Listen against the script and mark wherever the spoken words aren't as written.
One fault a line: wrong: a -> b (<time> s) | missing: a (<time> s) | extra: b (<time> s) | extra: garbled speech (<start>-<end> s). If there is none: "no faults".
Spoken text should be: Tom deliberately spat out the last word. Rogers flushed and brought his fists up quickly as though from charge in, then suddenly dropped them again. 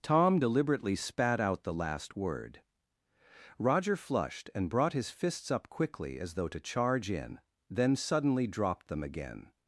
wrong: Rogers -> Roger (3.6 s)
wrong: from -> to (6.5 s)